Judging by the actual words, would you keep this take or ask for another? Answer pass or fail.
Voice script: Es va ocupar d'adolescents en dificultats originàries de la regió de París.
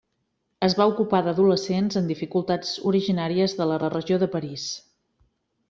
fail